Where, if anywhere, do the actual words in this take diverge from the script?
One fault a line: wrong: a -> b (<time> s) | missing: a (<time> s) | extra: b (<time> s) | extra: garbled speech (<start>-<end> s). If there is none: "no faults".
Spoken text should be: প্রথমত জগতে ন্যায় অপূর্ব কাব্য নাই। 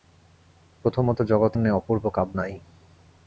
no faults